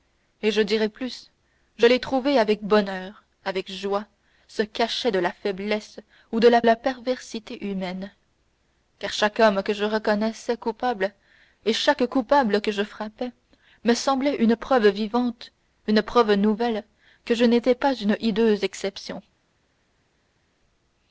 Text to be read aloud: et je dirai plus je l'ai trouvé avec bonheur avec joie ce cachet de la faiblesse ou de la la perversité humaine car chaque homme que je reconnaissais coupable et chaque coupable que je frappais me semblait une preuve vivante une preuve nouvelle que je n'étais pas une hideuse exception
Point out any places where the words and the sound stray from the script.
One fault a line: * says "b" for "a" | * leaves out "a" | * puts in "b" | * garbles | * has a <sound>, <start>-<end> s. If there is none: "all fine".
all fine